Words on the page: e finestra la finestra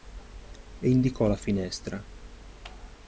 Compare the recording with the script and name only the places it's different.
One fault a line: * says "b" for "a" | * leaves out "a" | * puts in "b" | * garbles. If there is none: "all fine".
* says "indicò" for "finestra"